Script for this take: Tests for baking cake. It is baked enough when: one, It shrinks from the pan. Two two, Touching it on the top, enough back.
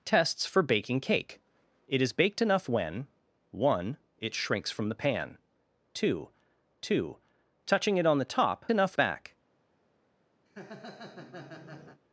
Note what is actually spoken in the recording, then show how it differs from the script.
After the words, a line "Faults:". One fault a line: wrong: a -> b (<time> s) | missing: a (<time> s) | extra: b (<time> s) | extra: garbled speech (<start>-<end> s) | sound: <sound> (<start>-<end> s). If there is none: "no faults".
Tests for baking cake. It is baked enough when: one, It shrinks from the pan. Two two, Touching it on the top, enough back.
Faults:
sound: laugh (10.5-12.0 s)